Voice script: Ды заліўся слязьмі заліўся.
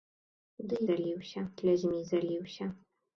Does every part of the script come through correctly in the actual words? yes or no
yes